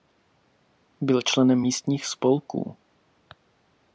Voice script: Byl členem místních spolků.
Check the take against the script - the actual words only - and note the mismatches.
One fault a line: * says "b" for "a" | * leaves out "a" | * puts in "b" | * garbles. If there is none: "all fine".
all fine